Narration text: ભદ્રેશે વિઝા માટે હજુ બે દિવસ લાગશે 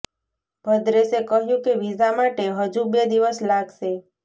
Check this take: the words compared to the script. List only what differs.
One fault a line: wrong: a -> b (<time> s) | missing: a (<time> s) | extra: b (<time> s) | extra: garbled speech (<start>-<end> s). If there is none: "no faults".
extra: કહ્યું કે (1.3 s)